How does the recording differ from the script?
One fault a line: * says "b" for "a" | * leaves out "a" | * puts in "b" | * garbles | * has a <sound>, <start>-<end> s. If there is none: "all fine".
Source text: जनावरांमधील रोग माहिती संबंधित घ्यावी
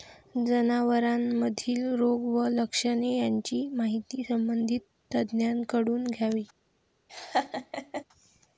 * puts in "व लक्षणे यांची"
* puts in "तज्ज्ञांकडून"
* has a laugh, 7.1-8.0 s